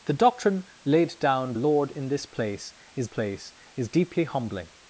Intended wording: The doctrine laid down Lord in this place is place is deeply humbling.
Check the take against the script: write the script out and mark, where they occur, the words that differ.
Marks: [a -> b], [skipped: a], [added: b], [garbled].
The doctrine laid down Lord in this place is place is deeply humbling.